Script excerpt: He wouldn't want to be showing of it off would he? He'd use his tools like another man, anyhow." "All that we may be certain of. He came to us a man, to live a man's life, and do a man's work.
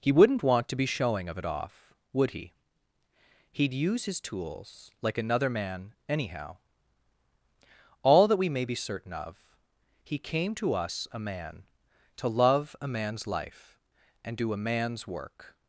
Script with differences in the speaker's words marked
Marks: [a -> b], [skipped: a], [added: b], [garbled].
He wouldn't want to be showing of it off would he? He'd use his tools like another man, anyhow." "All that we may be certain of. He came to us a man, to [live -> love] a man's life, and do a man's work.